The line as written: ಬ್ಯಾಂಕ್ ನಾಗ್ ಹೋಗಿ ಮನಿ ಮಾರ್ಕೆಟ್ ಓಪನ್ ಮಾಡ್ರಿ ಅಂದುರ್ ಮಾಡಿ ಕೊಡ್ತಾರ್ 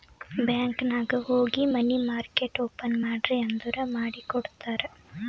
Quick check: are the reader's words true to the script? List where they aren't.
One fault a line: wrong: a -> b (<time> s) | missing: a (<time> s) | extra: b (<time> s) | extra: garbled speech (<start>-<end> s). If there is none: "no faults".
no faults